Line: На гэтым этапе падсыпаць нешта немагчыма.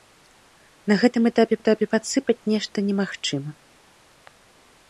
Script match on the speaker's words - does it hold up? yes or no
no